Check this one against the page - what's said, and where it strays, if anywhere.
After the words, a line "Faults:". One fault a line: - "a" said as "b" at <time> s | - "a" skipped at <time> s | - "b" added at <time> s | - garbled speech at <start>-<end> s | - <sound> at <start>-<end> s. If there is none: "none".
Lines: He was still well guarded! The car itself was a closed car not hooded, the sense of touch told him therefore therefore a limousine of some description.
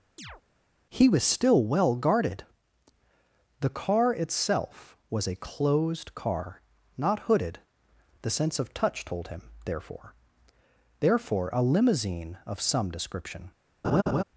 He was still well guarded! The car itself was a closed car not hooded, the sense of touch told him therefore therefore a limousine of some description.
Faults:
- chirp at 0.2-0.4 s
- laugh at 13.8-14.2 s